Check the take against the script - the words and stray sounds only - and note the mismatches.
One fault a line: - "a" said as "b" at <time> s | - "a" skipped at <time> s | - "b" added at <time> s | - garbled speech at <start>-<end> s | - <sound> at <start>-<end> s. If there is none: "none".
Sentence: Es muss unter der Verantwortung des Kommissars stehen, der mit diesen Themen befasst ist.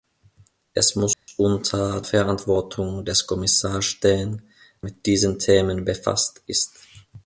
- dropout at 1.1-1.3 s
- "der" skipped at 2.0 s
- "der" skipped at 4.5 s